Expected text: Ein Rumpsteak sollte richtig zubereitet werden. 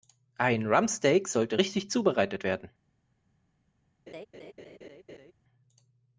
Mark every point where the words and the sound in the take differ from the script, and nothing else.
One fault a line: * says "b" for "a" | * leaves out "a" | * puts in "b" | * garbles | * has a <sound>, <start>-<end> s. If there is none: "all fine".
* has a laugh, 4.1-5.3 s